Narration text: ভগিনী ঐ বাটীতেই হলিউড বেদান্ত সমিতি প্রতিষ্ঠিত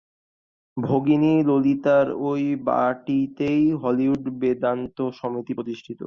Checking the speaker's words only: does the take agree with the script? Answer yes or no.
no